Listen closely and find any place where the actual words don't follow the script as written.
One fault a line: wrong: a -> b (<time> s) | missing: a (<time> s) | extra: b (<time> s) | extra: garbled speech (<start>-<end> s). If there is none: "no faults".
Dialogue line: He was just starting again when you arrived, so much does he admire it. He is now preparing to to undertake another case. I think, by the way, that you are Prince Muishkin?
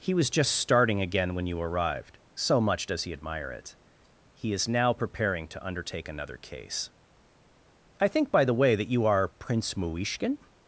missing: to (5.6 s)